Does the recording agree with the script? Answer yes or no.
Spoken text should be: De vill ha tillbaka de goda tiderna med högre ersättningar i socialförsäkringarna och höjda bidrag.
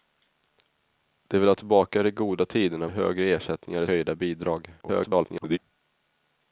no